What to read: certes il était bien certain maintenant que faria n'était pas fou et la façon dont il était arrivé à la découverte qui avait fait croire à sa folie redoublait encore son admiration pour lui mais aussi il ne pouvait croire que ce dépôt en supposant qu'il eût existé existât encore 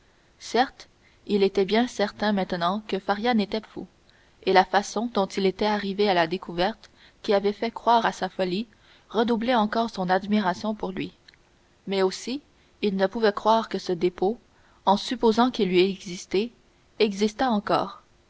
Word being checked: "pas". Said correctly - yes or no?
no